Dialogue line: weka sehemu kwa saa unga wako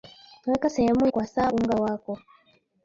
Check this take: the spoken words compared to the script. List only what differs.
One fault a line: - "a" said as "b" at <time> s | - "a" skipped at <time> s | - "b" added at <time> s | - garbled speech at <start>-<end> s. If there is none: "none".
none